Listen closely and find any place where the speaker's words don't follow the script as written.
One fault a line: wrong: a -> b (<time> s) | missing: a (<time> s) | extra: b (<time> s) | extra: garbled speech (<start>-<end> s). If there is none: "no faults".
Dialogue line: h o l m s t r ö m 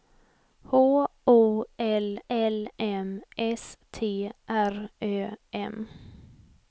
extra: l (2.3 s)